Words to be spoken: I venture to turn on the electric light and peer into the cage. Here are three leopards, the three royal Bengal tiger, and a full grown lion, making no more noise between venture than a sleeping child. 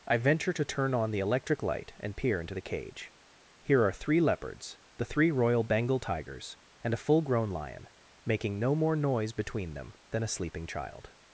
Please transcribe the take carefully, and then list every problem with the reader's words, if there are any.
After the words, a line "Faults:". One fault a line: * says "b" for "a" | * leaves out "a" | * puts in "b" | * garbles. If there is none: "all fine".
I venture to turn on the electric light and peer into the cage. Here are three leopards, the three royal Bengal tigers, and a full grown lion, making no more noise between them than a sleeping child.
Faults:
* says "tigers" for "tiger"
* says "them" for "venture"